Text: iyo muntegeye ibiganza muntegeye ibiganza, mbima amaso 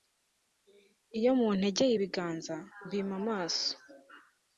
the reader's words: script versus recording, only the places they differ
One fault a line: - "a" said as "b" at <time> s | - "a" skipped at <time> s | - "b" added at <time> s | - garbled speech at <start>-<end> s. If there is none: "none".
- "muntegeye ibiganza" skipped at 2.6 s